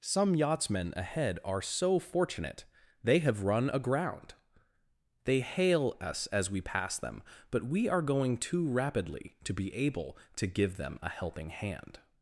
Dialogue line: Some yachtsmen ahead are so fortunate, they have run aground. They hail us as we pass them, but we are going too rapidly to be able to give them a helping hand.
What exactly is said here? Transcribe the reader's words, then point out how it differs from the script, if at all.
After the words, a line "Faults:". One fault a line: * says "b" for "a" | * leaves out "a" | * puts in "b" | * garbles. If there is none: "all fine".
Some yachtsmen ahead are so fortunate, they have run aground. They hail us as we pass them, but we are going too rapidly to be able to give them a helping hand.
Faults:
all fine